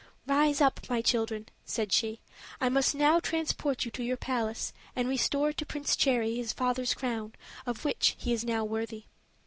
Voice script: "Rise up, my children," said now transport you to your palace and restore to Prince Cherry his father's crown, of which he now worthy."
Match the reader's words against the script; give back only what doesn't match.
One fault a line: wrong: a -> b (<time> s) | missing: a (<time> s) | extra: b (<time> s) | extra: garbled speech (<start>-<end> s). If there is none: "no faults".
extra: she I must (1.9 s)
extra: is (8.3 s)